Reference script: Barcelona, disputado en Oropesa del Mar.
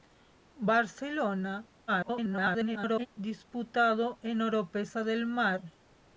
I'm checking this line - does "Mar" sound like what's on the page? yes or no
yes